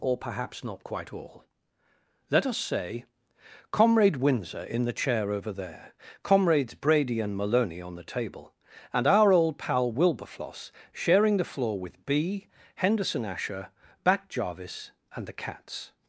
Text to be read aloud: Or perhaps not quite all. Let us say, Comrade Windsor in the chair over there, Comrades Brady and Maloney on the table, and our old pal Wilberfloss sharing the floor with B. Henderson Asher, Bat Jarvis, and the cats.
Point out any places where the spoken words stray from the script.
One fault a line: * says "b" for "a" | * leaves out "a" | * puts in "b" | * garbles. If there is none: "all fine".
all fine